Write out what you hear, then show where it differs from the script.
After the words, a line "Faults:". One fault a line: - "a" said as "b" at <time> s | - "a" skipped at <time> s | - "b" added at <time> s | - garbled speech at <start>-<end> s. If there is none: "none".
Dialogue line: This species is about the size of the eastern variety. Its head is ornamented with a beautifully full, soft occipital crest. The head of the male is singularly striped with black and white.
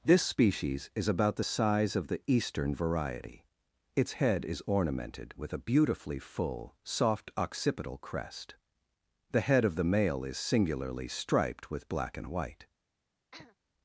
This species is about the size of the eastern variety. Its head is ornamented with a beautifully full, soft occipital crest. The head of the male is singularly striped with black and white.
Faults:
none